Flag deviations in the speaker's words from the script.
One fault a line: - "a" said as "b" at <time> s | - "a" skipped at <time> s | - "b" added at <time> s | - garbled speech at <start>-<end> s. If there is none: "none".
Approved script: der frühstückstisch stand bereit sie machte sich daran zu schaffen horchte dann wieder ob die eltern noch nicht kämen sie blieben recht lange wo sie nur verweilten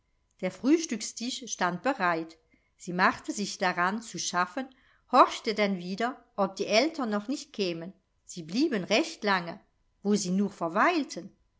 none